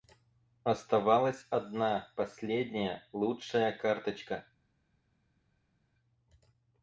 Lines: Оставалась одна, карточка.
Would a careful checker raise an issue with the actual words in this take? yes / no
yes